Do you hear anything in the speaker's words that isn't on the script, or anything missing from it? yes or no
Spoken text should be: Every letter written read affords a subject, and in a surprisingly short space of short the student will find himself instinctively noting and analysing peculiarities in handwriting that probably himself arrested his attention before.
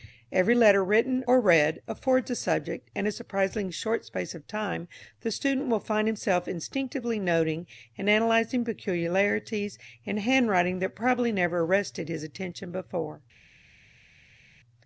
yes